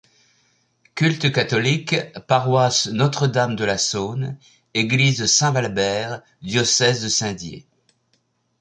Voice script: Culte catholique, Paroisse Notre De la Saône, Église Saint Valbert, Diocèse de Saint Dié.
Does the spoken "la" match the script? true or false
true